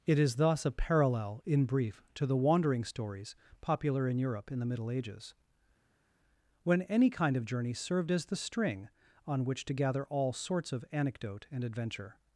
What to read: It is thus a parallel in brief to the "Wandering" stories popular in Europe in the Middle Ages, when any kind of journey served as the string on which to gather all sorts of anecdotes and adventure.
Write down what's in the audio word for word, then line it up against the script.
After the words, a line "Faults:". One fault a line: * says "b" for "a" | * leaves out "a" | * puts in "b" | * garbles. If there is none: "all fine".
It is thus a parallel in brief to the "Wandering" stories popular in Europe in the Middle Ages, when any kind of journey served as the string on which to gather all sorts of anecdote and adventure.
Faults:
* says "anecdote" for "anecdotes"